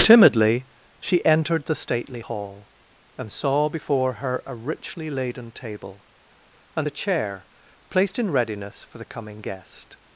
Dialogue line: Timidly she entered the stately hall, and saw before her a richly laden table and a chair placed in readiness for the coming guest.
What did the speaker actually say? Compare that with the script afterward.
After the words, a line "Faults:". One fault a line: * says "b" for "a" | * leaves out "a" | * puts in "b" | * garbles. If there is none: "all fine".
Timidly she entered the stately hall, and saw before her a richly laden table and a chair placed in readiness for the coming guest.
Faults:
all fine